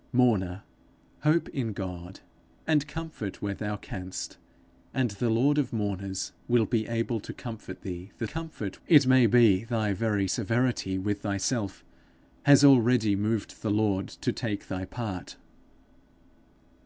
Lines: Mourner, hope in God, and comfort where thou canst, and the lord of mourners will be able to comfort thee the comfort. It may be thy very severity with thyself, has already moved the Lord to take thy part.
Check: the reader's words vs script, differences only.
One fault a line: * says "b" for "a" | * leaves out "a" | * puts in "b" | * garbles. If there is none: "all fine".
all fine